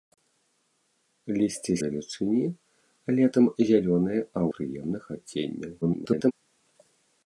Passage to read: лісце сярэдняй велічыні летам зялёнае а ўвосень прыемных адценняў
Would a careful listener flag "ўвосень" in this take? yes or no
yes